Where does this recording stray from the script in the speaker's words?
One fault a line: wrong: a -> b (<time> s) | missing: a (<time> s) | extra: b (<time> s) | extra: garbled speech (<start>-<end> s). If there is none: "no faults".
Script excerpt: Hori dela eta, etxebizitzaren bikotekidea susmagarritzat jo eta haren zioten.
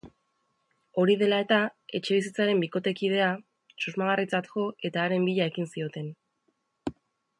extra: bila ekin (5.3 s)